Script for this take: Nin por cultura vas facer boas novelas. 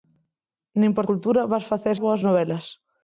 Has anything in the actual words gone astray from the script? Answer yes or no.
no